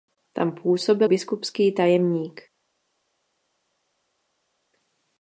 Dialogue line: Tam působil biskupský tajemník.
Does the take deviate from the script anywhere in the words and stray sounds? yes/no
no